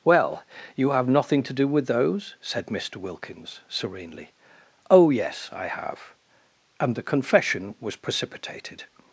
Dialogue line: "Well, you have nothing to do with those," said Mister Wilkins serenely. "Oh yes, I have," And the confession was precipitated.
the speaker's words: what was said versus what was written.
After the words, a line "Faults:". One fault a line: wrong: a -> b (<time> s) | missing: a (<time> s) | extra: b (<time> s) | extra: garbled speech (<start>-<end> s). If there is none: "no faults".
"Well, you have nothing to do with those," said Mister Wilkins serenely. "Oh yes, I have," And the confession was precipitated.
Faults:
no faults